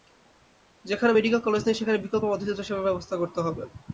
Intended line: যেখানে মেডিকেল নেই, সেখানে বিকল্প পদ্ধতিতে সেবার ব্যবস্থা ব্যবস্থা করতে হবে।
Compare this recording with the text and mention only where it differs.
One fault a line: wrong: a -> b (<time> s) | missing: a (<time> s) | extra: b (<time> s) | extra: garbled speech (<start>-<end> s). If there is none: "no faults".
extra: কলেজ (1.4 s)
missing: ব্যবস্থা (3.1 s)